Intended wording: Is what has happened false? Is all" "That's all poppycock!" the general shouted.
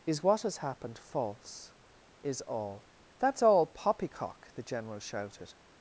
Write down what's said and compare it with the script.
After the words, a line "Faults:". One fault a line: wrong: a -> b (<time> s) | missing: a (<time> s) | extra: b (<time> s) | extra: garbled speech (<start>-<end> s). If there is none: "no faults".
Is what has happened false? Is all" "That's all poppycock!" the general shouted.
Faults:
no faults